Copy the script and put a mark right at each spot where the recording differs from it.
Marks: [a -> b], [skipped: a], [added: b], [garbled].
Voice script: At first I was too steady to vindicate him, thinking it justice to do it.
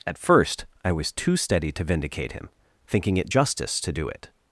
At first I was too steady to vindicate him, thinking it justice to do it.